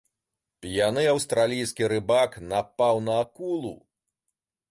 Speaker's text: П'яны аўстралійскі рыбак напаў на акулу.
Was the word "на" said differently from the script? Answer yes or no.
no